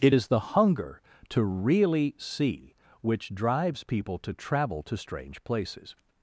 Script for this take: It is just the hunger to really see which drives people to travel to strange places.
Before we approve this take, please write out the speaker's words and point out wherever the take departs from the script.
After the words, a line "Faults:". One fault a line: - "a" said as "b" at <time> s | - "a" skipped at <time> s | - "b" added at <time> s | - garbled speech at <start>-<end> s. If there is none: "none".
It is the hunger to really see which drives people to travel to strange places.
Faults:
- "just" skipped at 0.3 s